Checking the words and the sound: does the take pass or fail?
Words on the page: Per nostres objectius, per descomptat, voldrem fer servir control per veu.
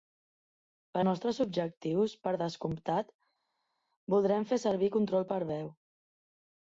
pass